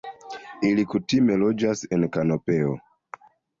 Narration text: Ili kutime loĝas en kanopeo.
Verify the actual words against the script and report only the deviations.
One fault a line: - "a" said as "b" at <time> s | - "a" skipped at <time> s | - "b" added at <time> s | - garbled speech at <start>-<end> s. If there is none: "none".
none